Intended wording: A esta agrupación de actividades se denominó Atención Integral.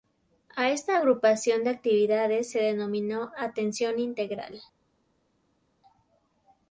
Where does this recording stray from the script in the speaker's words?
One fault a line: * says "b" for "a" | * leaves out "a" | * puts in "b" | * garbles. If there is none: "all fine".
all fine